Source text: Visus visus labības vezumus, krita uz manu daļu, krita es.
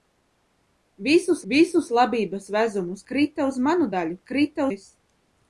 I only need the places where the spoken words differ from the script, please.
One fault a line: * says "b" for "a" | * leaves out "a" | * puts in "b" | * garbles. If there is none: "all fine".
all fine